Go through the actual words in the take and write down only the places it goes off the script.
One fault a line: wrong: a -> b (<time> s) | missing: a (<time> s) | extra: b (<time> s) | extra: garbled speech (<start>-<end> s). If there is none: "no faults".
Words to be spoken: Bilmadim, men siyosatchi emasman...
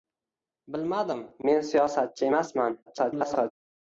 extra: garbled speech (2.9-3.5 s)